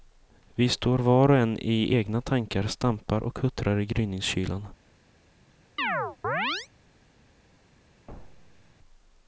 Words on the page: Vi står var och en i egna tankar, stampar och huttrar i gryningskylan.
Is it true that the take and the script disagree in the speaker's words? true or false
false